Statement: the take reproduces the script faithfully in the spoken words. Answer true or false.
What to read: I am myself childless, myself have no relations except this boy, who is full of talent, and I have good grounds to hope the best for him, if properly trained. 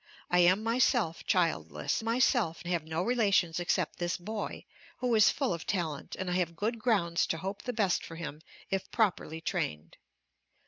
true